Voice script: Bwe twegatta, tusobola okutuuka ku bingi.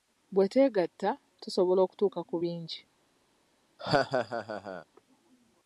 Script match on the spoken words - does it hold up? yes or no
yes